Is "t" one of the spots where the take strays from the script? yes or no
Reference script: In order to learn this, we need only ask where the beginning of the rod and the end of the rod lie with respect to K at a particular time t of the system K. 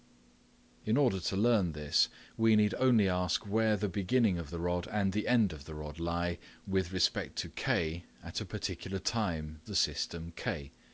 yes